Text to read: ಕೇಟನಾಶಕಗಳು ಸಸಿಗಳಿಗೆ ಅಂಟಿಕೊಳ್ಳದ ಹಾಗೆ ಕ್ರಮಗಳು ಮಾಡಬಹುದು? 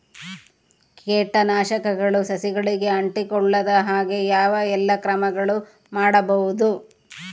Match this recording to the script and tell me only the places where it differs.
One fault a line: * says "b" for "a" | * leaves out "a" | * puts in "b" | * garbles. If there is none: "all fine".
* puts in "ಯಾವ ಎಲ್ಲಾ"